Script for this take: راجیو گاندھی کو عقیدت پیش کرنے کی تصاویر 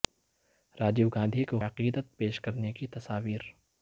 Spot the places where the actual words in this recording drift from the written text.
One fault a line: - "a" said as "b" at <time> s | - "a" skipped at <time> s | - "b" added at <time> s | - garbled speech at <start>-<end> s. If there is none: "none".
none